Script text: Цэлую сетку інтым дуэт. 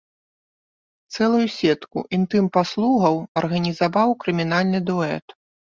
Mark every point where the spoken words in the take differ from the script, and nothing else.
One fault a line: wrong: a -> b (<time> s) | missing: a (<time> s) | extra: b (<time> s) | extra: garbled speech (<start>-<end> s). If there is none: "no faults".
extra: паслугаў арганізаваў крымінальны (2.6 s)